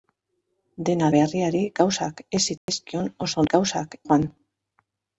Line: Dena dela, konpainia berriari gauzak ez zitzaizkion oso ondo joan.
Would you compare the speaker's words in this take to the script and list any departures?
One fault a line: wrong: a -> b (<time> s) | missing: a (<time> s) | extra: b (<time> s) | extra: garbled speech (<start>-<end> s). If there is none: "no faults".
missing: dela konpainia (1.1 s)
wrong: ondo -> gauzak (3.5 s)